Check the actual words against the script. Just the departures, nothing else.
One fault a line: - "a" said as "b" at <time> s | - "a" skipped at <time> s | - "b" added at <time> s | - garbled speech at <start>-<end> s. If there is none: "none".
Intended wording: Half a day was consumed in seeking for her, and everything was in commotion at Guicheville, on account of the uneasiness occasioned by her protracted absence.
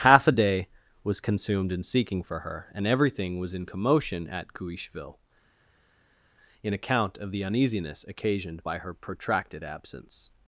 - "on" said as "in" at 6.6 s